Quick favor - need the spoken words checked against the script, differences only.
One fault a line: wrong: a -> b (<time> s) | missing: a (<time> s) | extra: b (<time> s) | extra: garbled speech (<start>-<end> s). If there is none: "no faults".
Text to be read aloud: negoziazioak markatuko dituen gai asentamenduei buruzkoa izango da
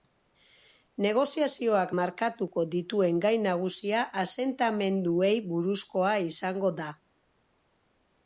extra: nagusia (3.5 s)